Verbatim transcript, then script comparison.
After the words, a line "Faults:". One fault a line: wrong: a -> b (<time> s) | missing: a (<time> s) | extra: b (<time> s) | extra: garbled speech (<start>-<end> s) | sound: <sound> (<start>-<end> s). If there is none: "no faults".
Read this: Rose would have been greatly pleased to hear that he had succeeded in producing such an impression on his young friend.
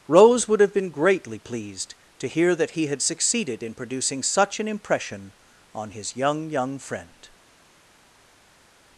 Rose would have been greatly pleased to hear that he had succeeded in producing such an impression on his young young friend.
Faults:
extra: young (6.5 s)